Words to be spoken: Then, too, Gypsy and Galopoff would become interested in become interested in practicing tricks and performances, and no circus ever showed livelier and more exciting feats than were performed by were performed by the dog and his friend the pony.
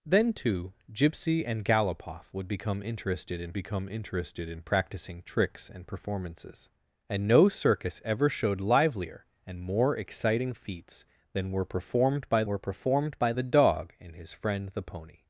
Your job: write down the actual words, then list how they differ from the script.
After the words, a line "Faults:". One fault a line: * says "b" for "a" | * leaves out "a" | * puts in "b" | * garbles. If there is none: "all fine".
Then, too, Gypsy and Galopoff would become interested in become interested in practicing tricks and performances, and no circus ever showed livelier and more exciting feats than were performed by were performed by the dog and his friend the pony.
Faults:
all fine